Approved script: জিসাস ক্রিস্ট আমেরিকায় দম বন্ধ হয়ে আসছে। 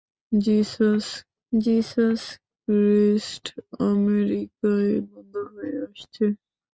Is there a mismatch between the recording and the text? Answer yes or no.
yes